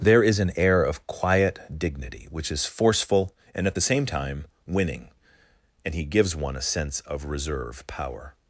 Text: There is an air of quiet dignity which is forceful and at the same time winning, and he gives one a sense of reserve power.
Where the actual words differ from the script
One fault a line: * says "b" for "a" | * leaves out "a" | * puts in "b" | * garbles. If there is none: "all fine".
all fine